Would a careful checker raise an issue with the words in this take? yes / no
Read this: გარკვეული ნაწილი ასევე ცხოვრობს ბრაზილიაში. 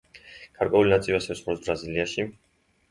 no